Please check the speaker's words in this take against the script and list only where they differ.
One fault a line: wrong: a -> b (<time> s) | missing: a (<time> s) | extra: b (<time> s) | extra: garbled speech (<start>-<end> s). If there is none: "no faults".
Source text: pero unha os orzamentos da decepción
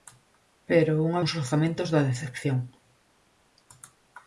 no faults